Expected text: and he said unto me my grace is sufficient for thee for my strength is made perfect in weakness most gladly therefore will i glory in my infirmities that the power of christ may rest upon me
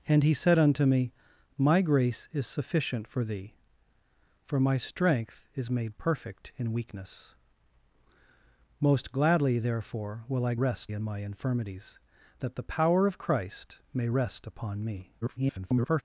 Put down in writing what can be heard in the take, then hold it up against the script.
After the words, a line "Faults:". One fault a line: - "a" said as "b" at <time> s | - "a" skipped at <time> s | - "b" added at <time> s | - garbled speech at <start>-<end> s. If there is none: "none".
and he said unto me my grace is sufficient for thee for my strength is made perfect in weakness most gladly therefore will i rest in my infirmities that the power of christ may rest upon me [garbled]
Faults:
- "glory" said as "rest" at 10.5 s
- garbled speech at 15.2-16.0 s